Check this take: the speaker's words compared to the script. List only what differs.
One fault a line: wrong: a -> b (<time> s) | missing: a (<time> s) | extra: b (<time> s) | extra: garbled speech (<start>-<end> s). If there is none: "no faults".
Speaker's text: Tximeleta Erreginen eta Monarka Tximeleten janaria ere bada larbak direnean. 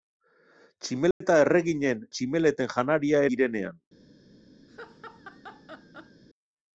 missing: eta Monarka (2.0 s)
missing: ere bada larbak (3.2 s)